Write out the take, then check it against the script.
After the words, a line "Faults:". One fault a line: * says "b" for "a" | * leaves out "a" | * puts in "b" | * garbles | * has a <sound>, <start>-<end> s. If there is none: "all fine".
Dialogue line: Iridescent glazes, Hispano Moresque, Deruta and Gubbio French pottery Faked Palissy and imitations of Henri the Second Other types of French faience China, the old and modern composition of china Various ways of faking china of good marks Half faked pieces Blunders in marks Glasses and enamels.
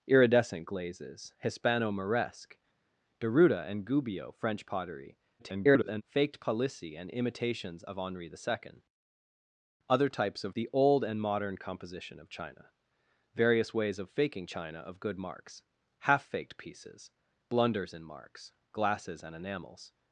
Iridescent glazes, Hispano Moresque, Deruta and Gubbio French pottery [garbled] Faked Palissy and imitations of Henri the Second Other types of The old and modern composition of china Various ways of faking china of good marks Half faked pieces Blunders in marks Glasses and enamels.
Faults:
* garbles
* leaves out "French faience China"